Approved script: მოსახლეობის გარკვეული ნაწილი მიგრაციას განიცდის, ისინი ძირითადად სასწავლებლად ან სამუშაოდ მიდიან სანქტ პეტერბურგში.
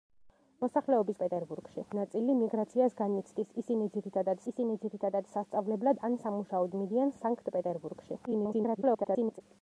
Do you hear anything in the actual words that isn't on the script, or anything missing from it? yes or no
yes